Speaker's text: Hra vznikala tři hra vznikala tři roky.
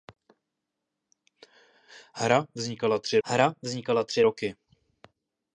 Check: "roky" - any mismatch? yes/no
no